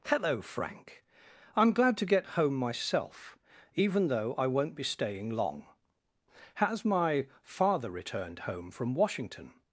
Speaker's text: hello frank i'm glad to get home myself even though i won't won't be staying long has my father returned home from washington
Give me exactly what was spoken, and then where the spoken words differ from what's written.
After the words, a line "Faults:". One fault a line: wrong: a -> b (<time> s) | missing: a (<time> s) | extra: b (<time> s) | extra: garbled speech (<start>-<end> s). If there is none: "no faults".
hello frank i'm glad to get home myself even though i won't be staying long has my father returned home from washington
Faults:
missing: won't (4.8 s)